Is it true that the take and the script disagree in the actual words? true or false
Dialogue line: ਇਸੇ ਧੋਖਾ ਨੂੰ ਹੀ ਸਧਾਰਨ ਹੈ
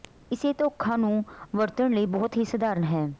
true